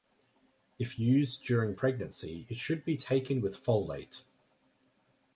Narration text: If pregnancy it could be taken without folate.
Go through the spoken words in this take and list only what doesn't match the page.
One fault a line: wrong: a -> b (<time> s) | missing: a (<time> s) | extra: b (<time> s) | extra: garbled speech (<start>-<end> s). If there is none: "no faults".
extra: used during (1.0 s)
wrong: could -> should (2.6 s)
wrong: without -> with (3.4 s)